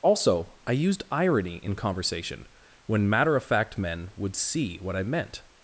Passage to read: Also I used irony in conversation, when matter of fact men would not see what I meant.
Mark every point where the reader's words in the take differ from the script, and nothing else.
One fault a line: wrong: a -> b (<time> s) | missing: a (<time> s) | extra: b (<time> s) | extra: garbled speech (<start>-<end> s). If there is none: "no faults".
missing: not (4.4 s)